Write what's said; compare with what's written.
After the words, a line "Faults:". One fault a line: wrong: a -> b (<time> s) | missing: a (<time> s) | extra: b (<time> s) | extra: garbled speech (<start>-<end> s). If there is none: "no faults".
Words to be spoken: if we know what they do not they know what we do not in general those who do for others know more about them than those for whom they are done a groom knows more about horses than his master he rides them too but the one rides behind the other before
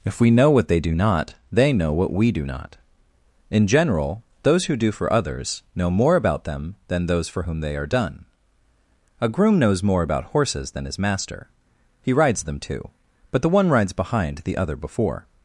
if we know what they do not they know what we do not in general those who do for others know more about them than those for whom they are done a groom knows more about horses than his master he rides them too but the one rides behind the other before
Faults:
no faults